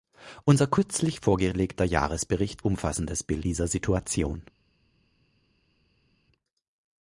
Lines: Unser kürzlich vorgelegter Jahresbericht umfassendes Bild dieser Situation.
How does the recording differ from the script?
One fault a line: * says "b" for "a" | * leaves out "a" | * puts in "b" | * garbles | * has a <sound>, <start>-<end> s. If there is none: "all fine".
all fine